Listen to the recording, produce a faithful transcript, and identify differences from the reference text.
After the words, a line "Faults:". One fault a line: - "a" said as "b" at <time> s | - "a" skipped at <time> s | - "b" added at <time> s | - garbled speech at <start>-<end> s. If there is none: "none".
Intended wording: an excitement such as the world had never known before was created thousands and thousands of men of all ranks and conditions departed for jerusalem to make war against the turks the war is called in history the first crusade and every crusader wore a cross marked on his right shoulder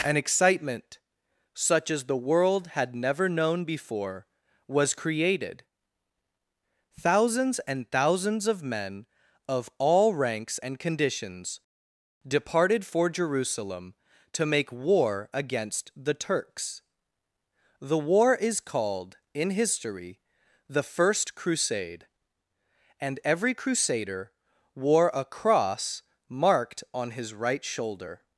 an excitement such as the world had never known before was created thousands and thousands of men of all ranks and conditions departed for jerusalem to make war against the turks the war is called in history the first crusade and every crusader wore a cross marked on his right shoulder
Faults:
none